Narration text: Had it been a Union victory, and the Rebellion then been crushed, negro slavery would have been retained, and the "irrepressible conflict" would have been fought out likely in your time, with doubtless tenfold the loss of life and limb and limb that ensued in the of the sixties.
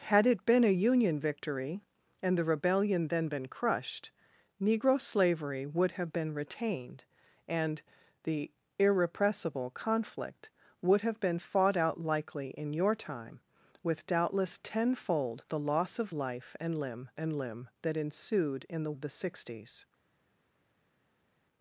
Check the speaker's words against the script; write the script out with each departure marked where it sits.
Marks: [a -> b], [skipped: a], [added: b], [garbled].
Had it been a Union victory, and the Rebellion then been crushed, negro slavery would have been retained, and the "irrepressible conflict" would have been fought out likely in your time, with doubtless tenfold the loss of life and limb and limb that ensued in the of the sixties.